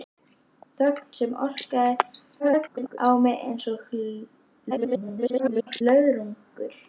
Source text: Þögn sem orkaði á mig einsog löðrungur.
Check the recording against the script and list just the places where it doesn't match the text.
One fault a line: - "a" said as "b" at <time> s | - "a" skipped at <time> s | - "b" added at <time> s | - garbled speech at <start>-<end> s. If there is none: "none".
- garbled speech at 2.4-3.0 s
- garbled speech at 4.7-5.8 s